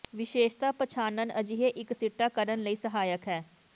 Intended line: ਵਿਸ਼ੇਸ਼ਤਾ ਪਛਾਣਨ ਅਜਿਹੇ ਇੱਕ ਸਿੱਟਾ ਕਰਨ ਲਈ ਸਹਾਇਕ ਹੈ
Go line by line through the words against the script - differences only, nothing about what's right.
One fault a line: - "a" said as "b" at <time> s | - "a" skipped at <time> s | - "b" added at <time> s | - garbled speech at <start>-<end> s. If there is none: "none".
none